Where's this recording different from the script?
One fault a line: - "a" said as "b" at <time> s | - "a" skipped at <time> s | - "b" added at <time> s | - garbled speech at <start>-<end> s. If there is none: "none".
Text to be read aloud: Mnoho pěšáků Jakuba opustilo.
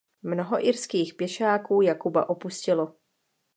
- "irských" added at 0.7 s